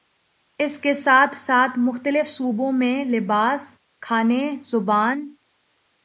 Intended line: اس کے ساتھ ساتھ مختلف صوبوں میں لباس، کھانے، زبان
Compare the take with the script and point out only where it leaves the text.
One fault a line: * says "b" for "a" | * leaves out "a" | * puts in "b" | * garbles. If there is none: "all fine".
all fine